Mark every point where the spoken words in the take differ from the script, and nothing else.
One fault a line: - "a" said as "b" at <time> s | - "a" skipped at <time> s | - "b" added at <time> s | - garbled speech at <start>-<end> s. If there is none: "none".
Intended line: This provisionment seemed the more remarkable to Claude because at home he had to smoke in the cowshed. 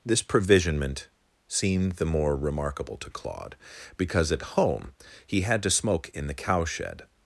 none